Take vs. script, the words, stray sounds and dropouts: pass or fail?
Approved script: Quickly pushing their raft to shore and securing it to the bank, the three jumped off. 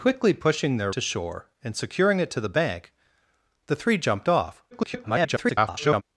fail